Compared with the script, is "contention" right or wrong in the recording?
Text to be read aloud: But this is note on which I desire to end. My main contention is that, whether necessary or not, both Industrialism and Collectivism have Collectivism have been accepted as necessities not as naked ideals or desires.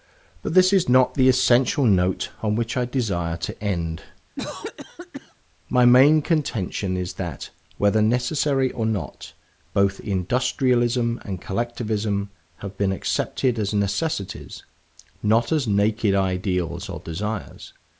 right